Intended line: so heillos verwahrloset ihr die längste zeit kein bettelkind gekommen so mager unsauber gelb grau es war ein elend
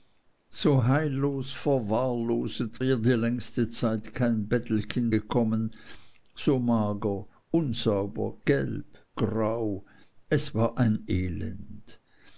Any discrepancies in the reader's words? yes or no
no